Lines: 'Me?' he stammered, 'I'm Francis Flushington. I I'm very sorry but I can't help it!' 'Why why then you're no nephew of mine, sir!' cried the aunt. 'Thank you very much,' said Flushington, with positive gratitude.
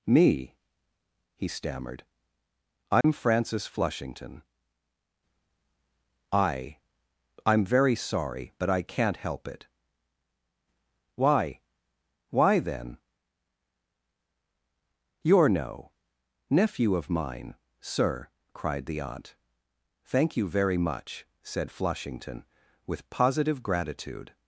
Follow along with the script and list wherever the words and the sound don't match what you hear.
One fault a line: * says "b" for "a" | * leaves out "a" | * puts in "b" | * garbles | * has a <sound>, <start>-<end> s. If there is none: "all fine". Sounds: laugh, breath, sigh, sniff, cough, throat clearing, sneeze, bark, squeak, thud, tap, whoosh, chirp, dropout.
* has a dropout, 3.0-3.0 s